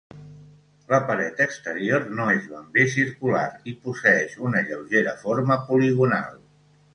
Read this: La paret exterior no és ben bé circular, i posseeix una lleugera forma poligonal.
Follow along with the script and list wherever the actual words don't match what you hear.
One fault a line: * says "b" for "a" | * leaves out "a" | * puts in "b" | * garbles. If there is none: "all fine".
all fine